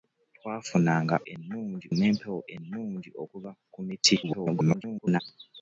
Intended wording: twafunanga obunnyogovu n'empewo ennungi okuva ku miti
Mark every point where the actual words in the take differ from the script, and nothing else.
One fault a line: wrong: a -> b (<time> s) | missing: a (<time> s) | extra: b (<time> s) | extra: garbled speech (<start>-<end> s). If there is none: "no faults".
wrong: obunnyogovu -> ennungi (1.3 s)
extra: garbled speech (4.2-5.2 s)